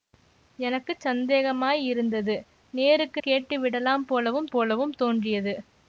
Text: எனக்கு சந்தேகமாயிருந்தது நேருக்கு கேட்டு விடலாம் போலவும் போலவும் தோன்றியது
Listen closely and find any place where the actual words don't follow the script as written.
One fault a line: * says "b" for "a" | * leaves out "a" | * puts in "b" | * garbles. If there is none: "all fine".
all fine